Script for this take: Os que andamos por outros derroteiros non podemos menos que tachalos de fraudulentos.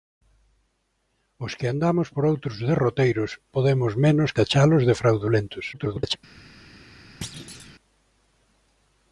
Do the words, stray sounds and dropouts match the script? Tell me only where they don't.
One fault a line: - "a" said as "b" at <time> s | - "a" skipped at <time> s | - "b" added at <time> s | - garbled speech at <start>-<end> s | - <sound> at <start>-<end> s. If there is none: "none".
- "non" skipped at 3.3 s
- "que" skipped at 4.3 s
- garbled speech at 5.7-6.2 s
- thud at 7.2-7.8 s